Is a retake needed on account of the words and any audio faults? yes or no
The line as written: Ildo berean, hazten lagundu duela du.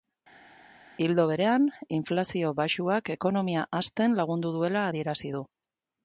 yes